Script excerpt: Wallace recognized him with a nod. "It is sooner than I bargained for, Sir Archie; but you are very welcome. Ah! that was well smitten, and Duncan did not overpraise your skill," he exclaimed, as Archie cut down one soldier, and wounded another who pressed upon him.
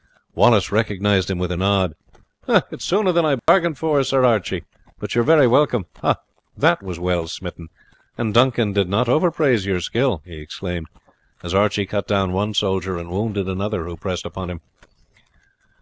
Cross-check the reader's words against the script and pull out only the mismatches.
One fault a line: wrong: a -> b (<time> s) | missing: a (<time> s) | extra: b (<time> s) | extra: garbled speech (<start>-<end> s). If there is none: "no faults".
no faults